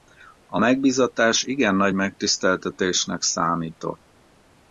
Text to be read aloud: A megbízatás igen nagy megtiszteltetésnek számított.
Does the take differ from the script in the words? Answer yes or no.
no